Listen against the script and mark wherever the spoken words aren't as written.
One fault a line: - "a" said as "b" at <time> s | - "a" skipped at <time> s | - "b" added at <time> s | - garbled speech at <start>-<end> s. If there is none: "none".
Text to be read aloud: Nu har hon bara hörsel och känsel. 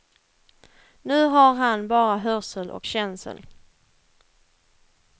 - "hon" said as "han" at 1.5 s